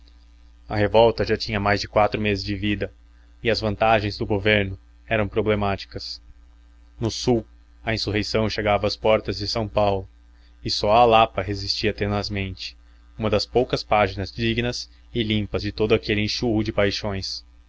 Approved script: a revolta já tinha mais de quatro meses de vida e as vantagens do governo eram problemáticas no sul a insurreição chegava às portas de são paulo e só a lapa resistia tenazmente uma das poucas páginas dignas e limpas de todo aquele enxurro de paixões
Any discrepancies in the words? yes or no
no